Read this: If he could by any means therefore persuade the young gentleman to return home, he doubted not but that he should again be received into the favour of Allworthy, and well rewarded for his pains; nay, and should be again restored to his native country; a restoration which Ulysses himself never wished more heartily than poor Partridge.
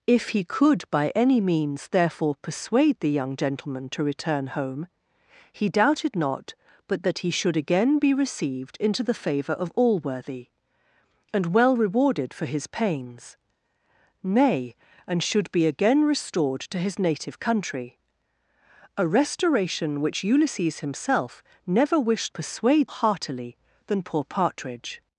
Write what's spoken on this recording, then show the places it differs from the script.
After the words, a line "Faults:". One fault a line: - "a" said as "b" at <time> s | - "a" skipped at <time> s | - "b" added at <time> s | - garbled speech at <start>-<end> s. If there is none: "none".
If he could by any means therefore persuade the young gentleman to return home, he doubted not but that he should again be received into the favour of Allworthy, and well rewarded for his pains; nay, and should be again restored to his native country; a restoration which Ulysses himself never wished persuade heartily than poor Partridge.
Faults:
- "more" said as "persuade" at 22.3 s